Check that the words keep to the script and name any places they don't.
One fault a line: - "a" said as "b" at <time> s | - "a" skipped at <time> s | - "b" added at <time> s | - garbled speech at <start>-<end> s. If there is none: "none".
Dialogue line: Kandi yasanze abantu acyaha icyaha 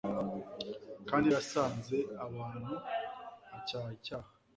none